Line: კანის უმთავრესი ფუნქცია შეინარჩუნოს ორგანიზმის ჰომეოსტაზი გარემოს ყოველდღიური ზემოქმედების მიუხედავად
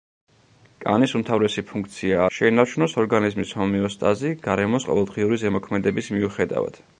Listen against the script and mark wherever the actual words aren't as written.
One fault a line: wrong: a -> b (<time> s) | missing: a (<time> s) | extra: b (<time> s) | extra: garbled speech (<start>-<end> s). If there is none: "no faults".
no faults